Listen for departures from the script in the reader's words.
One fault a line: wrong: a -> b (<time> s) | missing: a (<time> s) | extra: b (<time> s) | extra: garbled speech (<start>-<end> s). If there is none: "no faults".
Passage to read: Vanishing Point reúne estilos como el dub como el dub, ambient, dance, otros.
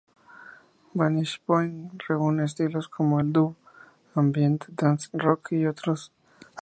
wrong: como el dub ambient dance -> ambient dance rock y (4.1 s)